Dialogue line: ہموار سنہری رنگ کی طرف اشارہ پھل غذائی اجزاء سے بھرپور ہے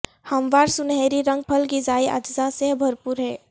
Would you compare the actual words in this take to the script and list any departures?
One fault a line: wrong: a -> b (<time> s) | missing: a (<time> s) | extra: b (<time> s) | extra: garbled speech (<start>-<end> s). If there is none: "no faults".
missing: کی طرف اشارہ (1.4 s)